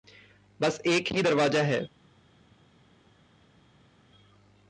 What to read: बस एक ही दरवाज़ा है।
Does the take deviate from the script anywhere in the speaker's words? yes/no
no